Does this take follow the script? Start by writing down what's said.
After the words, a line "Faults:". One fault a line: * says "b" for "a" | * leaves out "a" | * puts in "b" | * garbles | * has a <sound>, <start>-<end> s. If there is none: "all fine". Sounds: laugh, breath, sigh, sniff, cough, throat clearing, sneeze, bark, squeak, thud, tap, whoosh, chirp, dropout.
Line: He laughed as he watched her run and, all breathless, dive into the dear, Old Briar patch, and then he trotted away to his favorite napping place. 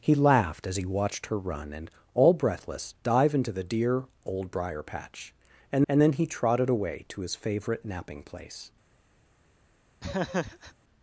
He laughed as he watched her run and, all breathless, dive into the dear, Old Briar patch, and and then he trotted away to his favorite napping place.
Faults:
* puts in "and"
* has a laugh, 10.0-10.7 s